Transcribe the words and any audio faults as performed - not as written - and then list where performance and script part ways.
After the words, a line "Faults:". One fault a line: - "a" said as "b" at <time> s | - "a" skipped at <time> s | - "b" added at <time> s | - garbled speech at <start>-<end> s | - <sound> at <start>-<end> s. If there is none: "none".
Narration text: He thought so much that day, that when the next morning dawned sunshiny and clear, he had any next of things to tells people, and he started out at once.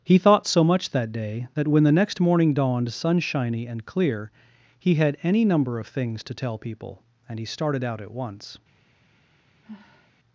He thought so much that day, that when the next morning dawned sunshiny and clear, he had any number of things to tell people, and he started out at once.
Faults:
- "next" said as "number" at 5.4 s
- "tells" said as "tell" at 6.3 s
- sigh at 9.6-10.1 s